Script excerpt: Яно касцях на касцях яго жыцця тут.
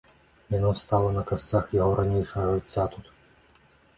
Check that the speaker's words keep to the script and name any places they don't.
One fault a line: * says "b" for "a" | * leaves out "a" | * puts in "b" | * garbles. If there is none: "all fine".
* says "стала" for "касцях"
* puts in "ранейшага"